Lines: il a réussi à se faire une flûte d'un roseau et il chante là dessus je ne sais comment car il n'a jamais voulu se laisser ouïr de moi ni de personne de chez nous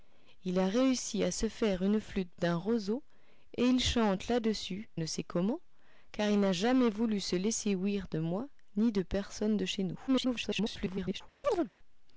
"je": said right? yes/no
no